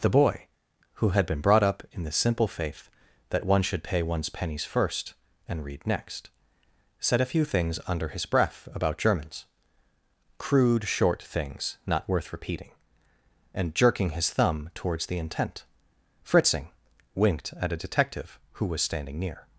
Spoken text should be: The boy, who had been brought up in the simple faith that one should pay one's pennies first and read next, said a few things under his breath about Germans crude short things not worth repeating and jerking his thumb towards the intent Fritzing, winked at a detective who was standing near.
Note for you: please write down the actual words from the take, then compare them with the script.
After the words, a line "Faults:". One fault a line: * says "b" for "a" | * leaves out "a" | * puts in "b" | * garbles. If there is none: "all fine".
The boy, who had been brought up in the simple faith that one should pay one's pennies first and read next, said a few things under his breath about Germans crude short things not worth repeating and jerking his thumb towards the intent Fritzing, winked at a detective who was standing near.
Faults:
all fine